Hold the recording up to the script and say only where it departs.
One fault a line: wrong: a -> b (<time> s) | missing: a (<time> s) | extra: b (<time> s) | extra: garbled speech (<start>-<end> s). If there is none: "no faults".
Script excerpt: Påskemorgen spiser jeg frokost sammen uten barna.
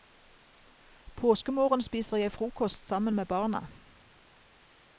wrong: uten -> med (3.1 s)